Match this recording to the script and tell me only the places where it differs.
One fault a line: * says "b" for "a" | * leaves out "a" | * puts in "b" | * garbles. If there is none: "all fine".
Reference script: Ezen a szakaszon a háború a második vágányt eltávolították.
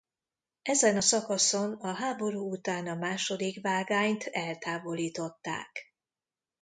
* puts in "után"